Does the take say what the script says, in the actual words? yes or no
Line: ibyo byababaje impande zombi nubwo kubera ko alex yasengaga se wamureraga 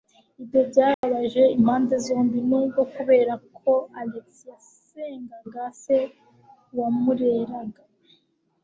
yes